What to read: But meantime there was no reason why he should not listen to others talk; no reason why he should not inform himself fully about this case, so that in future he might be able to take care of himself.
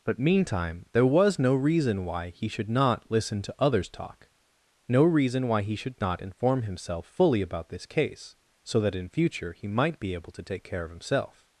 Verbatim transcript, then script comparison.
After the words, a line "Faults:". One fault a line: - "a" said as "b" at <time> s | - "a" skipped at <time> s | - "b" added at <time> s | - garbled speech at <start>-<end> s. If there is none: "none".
But meantime there was no reason why he should not listen to others talk; no reason why he should not inform himself fully about this case, so that in future he might be able to take care of himself.
Faults:
none